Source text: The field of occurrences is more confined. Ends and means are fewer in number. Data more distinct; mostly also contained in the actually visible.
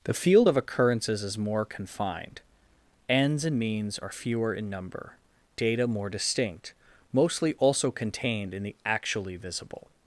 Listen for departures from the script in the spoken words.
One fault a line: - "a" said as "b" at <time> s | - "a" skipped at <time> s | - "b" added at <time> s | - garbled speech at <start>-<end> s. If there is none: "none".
none